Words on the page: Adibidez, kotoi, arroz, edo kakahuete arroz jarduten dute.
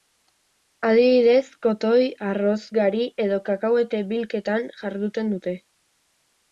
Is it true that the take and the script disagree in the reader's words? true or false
true